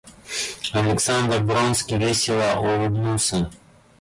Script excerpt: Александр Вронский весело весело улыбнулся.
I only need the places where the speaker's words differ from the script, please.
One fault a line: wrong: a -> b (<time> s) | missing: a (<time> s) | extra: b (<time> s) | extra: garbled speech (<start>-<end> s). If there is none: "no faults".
missing: весело (2.6 s)